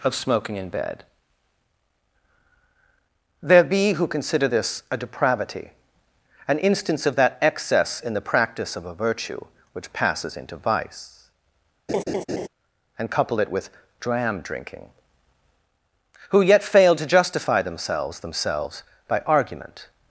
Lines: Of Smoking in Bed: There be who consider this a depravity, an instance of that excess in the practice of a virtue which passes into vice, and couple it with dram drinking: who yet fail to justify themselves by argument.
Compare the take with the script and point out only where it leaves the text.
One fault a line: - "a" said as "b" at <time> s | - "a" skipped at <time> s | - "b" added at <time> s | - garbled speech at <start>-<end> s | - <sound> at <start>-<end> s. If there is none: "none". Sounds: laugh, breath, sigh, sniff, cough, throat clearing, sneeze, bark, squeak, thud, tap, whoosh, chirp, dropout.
- laugh at 11.9-12.5 s
- "themselves" added at 18.2 s